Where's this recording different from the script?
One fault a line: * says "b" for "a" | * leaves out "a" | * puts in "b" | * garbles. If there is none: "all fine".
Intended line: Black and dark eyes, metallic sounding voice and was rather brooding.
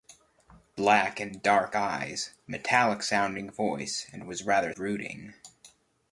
all fine